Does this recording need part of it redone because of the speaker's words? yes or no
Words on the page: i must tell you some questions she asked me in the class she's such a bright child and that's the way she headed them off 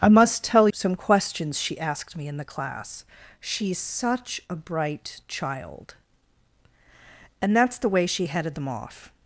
yes